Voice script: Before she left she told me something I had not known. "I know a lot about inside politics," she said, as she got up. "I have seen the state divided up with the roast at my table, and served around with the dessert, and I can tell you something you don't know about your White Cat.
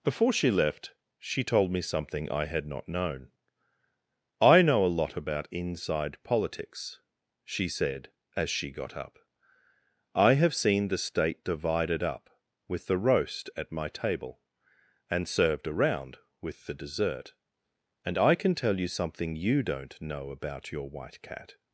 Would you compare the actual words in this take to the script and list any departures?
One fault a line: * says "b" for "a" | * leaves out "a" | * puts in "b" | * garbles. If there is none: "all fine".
all fine